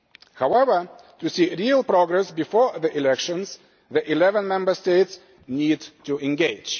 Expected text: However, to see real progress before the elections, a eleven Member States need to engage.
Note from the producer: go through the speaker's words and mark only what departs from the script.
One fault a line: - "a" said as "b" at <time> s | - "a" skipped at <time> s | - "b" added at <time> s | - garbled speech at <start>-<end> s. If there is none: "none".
- "a" said as "the" at 3.9 s